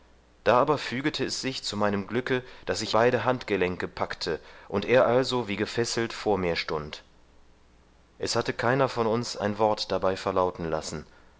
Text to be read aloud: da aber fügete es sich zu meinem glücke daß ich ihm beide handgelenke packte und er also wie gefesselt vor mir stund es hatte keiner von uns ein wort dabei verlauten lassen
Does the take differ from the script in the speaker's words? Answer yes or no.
yes